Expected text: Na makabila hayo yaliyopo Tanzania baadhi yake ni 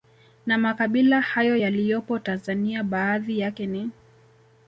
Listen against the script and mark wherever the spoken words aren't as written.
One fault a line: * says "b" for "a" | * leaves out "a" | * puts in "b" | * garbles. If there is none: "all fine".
all fine